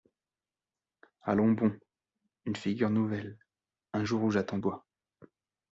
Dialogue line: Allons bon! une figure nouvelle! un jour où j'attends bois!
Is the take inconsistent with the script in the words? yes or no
no